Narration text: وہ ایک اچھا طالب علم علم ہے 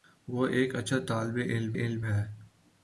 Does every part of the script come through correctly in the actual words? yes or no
yes